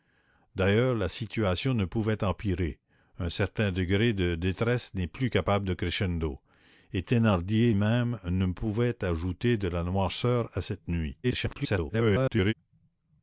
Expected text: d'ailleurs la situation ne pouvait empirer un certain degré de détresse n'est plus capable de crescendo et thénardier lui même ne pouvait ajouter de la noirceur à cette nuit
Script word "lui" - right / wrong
wrong